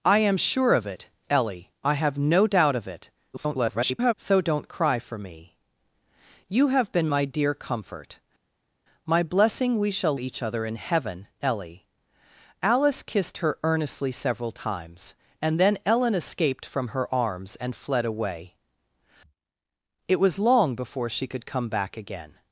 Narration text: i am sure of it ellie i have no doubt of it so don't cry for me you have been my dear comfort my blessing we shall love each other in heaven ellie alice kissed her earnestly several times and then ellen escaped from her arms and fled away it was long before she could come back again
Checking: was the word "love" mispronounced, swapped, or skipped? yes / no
yes